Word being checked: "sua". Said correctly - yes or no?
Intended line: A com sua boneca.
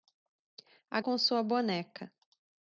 yes